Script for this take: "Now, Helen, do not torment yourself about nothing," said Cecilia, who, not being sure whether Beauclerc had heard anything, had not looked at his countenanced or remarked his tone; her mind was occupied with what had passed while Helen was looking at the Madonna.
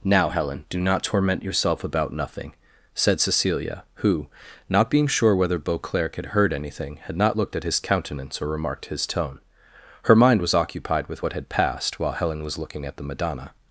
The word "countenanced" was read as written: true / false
false